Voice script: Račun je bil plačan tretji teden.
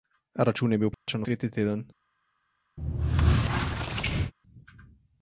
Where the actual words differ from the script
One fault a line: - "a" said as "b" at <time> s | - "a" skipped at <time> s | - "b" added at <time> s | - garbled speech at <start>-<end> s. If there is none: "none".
none